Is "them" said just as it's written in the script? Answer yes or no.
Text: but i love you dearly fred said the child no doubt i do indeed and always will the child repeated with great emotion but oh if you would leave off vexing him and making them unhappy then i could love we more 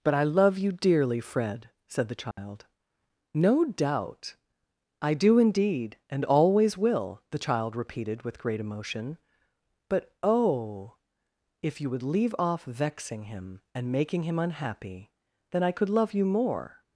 no